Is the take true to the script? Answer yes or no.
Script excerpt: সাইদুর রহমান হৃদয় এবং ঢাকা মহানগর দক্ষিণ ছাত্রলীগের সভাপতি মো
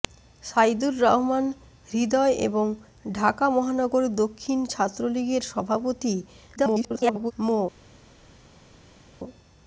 no